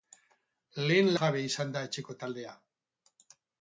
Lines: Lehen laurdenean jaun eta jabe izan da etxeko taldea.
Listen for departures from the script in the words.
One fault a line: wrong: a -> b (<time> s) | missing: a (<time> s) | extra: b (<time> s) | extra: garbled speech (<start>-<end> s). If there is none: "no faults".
missing: laurdenean jaun eta (1.1 s)